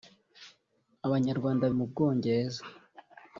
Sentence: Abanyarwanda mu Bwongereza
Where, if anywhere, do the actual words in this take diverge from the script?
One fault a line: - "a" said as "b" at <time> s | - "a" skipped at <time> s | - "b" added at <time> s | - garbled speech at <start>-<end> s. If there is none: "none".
none